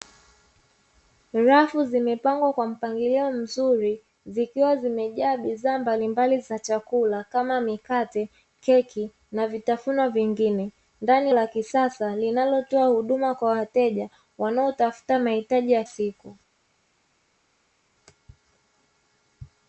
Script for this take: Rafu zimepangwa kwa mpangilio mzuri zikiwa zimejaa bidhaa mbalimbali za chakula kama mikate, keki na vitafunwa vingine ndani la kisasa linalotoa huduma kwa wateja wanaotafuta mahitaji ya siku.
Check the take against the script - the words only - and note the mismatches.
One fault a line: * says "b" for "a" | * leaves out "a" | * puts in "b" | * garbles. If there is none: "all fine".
all fine